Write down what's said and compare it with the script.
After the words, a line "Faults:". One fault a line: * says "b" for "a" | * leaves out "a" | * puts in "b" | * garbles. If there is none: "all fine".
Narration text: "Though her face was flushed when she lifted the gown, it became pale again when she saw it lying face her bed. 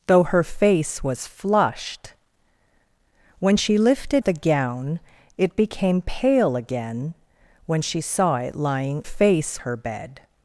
"Though her face was flushed when she lifted the gown, it became pale again when she saw it lying face her bed.
Faults:
all fine